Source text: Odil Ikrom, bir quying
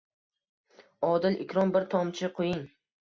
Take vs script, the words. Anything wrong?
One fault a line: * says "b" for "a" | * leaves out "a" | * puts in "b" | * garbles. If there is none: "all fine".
* puts in "tomchi"